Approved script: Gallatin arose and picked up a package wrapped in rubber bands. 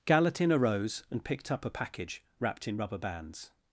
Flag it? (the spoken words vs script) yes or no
no